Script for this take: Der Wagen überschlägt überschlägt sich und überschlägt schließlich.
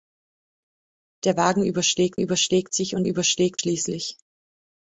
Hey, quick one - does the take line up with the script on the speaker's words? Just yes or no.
yes